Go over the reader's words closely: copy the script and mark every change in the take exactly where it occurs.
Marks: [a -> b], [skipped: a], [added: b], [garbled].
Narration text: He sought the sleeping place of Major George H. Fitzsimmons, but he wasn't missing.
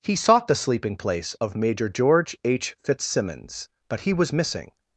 He sought the sleeping place of Major George H. Fitzsimmons, but he [wasn't -> was] missing.